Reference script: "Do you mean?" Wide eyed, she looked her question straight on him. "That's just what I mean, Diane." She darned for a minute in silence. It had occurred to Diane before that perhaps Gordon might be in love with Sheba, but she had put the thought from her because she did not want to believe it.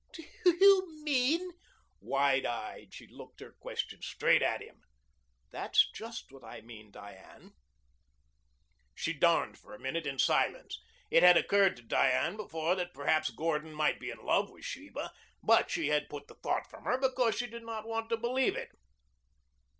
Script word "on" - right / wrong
wrong